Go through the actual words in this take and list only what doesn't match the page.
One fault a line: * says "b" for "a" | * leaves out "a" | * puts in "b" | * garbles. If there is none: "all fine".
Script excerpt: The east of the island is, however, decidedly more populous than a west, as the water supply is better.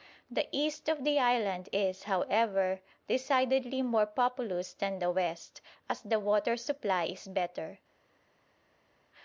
* says "the" for "a"